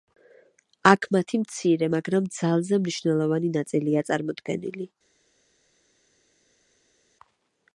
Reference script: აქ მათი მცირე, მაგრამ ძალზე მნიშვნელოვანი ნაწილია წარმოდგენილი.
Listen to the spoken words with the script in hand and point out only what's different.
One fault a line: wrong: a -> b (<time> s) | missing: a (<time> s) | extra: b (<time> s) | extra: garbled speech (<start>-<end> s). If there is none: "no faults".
no faults